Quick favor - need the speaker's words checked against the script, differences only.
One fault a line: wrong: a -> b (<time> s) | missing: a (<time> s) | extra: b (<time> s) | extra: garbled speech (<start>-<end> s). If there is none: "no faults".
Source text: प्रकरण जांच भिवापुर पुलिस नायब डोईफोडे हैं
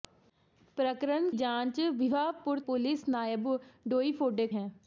no faults